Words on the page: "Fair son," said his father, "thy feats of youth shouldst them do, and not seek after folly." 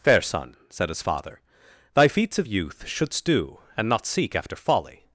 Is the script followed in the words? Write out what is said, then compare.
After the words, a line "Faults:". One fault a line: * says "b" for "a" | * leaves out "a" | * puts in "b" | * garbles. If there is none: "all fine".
"Fair son," said his father, "thy feats of youth shouldst do, and not seek after folly."
Faults:
* leaves out "them"